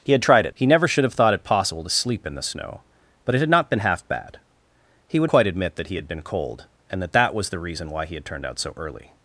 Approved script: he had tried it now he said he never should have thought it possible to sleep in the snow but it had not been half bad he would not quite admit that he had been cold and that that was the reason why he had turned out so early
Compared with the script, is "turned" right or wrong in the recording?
right